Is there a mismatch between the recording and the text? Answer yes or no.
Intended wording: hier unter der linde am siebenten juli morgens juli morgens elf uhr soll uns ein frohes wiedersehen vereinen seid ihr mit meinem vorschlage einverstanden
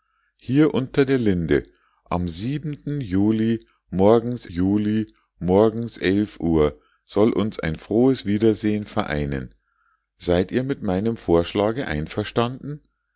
no